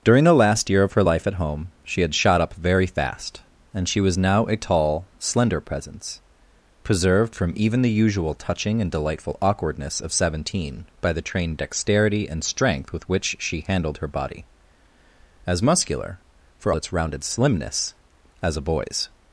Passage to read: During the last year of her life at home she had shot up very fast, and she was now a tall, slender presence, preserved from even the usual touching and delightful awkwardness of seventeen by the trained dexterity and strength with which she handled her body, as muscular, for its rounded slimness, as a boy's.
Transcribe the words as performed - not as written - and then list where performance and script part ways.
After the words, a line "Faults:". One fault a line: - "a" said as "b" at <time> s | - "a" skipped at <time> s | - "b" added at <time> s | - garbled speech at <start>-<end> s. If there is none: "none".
During the last year of her life at home she had shot up very fast, and she was now a tall, slender presence, preserved from even the usual touching and delightful awkwardness of seventeen by the trained dexterity and strength with which she handled her body, as muscular, for its rounded slimness, as a boy's.
Faults:
none